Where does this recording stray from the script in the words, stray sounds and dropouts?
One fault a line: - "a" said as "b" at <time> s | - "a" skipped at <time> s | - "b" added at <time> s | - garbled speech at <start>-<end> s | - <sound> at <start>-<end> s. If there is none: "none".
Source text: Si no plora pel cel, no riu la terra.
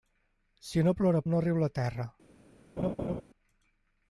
- "pel cel" skipped at 1.2 s
- laugh at 2.8-3.2 s